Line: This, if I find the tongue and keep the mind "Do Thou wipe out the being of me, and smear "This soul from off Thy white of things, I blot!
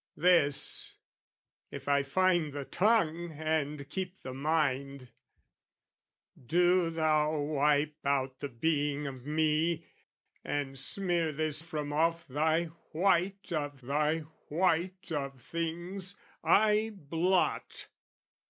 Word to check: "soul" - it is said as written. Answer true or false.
false